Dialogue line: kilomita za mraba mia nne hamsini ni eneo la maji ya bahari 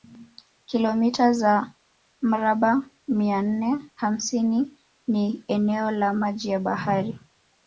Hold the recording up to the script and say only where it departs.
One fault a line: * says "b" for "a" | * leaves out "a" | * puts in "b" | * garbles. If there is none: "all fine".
all fine